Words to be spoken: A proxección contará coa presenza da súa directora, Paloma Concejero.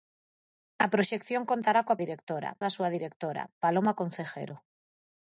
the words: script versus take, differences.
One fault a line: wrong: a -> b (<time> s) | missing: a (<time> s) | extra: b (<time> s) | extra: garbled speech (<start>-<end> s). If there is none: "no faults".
wrong: presenza -> directora (2.0 s)